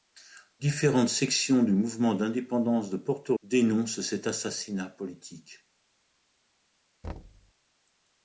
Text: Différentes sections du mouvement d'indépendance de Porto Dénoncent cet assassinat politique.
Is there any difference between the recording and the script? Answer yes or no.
no